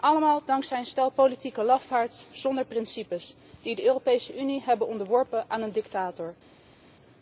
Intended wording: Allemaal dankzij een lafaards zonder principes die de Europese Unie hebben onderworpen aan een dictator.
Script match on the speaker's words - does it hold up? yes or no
no